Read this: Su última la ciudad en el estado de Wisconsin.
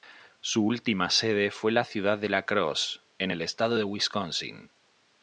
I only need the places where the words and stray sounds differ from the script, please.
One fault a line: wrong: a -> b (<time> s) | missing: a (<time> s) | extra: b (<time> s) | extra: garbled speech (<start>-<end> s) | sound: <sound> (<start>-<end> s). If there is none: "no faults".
extra: sede fue (1.1 s)
extra: de La Crosse (2.2 s)